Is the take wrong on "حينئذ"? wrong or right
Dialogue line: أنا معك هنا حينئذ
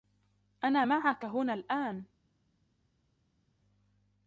wrong